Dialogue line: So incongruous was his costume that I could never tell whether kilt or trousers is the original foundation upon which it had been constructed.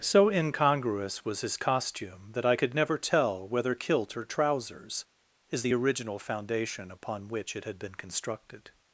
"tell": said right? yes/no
yes